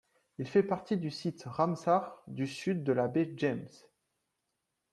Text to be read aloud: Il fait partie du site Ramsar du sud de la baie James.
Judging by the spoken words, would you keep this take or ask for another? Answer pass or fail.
pass